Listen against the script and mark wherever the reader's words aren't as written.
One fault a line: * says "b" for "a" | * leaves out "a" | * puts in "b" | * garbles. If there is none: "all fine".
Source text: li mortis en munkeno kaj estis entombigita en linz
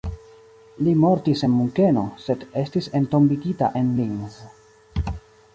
* says "sed" for "kaj"